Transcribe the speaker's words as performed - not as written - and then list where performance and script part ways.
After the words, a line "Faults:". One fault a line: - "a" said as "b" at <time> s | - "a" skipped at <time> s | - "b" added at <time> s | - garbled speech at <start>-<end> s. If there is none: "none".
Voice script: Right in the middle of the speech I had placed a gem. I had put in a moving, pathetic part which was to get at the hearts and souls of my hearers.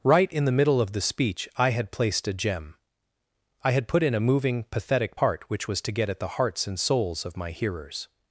Right in the middle of the speech I had placed a gem. I had put in a moving, pathetic part which was to get at the hearts and souls of my hearers.
Faults:
none